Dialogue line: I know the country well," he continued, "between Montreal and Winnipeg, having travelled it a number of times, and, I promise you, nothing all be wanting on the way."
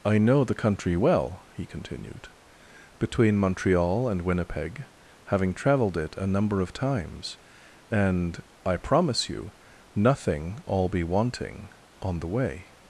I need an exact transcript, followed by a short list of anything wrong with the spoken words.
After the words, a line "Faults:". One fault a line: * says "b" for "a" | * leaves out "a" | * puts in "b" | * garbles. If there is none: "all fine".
I know the country well," he continued, "between Montreal and Winnipeg, having travelled it a number of times, and, I promise you, nothing all be wanting on the way."
Faults:
all fine